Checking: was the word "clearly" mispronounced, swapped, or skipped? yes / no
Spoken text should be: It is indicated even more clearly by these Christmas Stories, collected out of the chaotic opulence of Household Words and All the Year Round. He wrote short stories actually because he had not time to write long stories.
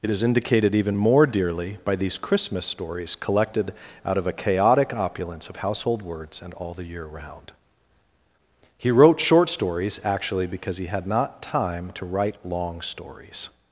yes